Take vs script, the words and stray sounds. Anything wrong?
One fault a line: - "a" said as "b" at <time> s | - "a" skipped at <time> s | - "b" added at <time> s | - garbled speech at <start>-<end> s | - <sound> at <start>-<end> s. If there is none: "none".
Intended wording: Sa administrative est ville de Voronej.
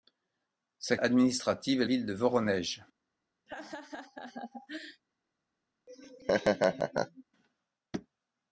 - laugh at 3.5-5.0 s
- laugh at 5.9-7.2 s